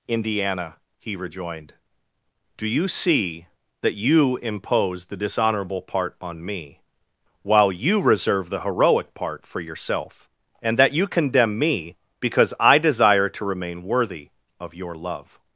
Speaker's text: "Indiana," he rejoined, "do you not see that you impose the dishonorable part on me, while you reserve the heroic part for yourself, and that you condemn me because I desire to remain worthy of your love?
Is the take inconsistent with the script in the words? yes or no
yes